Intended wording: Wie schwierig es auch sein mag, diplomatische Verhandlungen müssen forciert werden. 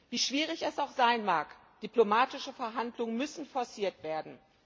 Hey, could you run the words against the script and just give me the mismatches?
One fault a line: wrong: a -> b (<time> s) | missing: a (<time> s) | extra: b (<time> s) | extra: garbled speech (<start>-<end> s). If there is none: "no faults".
no faults